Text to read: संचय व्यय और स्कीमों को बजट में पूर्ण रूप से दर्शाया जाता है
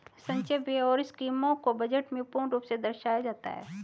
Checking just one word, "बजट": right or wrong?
right